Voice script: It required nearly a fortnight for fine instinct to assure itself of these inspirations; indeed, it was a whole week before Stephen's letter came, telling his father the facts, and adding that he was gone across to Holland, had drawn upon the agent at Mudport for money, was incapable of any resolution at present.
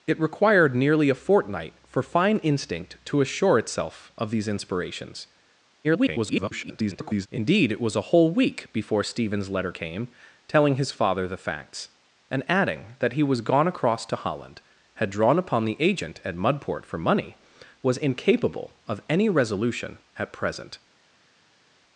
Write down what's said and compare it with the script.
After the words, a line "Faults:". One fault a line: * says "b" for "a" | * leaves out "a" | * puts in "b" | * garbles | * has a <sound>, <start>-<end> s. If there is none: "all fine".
It required nearly a fortnight for fine instinct to assure itself of these inspirations; [garbled] indeed, it was a whole week before Stephen's letter came, telling his father the facts, and adding that he was gone across to Holland, had drawn upon the agent at Mudport for money, was incapable of any resolution at present.
Faults:
* garbles